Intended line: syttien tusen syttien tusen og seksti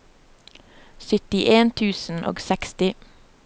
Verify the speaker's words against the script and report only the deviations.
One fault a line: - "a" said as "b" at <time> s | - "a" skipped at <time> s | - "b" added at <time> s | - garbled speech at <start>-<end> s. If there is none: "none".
- "syttien tusen" skipped at 2.2 s